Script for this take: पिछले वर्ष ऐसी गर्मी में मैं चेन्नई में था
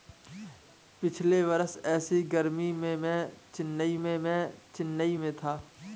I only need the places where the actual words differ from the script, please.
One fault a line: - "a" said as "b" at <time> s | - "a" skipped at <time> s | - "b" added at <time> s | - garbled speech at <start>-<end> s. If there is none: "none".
- "मैं चेन्नई में" added at 4.2 s